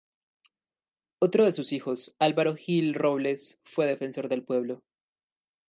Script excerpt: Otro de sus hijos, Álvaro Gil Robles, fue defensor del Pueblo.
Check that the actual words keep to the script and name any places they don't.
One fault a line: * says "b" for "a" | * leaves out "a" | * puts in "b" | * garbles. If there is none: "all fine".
all fine